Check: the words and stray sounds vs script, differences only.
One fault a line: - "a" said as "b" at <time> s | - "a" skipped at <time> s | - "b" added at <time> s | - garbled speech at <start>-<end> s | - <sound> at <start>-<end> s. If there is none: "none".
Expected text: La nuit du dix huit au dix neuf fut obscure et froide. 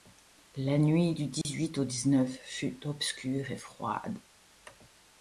- dropout at 1.4-1.4 s